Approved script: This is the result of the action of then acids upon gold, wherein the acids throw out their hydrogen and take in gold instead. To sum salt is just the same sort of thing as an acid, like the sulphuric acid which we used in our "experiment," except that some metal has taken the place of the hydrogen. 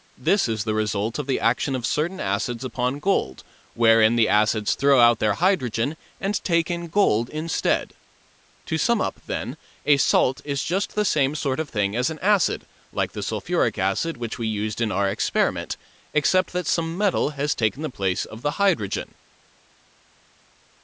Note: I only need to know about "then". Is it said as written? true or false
false